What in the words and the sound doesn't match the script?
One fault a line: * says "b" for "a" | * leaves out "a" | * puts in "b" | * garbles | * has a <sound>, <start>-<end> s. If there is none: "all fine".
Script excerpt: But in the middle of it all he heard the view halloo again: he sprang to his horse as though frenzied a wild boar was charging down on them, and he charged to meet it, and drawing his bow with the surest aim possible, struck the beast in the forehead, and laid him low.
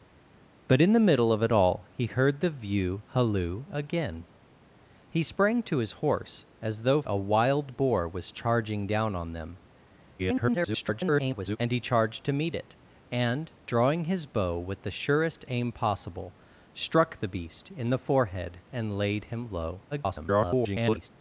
* leaves out "frenzied"
* garbles
* garbles